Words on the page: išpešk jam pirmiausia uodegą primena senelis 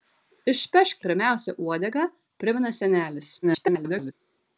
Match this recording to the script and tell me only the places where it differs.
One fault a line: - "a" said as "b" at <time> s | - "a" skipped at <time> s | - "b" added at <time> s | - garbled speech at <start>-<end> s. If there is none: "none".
- "jam" skipped at 1.1 s
- garbled speech at 3.4-4.1 s